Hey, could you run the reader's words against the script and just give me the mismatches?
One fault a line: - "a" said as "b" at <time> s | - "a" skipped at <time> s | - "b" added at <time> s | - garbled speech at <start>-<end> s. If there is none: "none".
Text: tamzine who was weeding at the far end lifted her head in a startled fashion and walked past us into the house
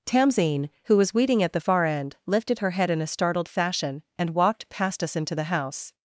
none